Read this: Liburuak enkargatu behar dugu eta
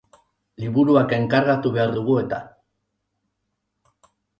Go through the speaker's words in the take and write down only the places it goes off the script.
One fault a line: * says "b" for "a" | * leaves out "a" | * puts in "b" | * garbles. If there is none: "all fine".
all fine